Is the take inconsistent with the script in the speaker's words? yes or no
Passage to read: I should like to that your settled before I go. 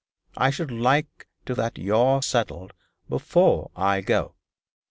no